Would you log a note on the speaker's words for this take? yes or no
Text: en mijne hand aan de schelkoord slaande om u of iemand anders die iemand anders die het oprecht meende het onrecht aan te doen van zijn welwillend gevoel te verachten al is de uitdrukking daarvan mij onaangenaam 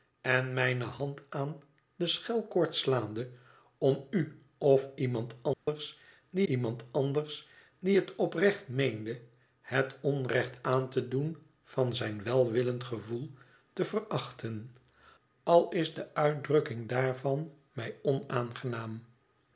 no